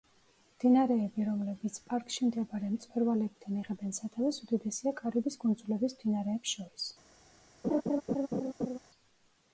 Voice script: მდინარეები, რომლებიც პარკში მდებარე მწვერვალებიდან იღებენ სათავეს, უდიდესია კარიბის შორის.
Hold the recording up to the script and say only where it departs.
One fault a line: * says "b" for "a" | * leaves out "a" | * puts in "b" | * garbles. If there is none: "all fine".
* puts in "კუნძულების მდინარეებს"